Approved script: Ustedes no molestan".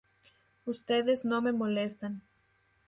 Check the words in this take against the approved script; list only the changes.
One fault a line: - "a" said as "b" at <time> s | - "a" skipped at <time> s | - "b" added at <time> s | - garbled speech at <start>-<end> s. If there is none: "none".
- "me" added at 1.4 s